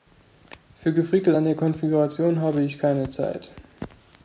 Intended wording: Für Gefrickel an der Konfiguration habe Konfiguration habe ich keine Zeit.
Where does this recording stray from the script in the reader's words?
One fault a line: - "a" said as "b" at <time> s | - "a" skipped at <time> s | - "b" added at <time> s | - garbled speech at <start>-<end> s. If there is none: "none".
- "Konfiguration habe" skipped at 2.6 s